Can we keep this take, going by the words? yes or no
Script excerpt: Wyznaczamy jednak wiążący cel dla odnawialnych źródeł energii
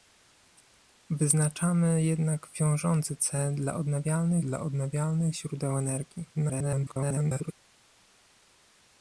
no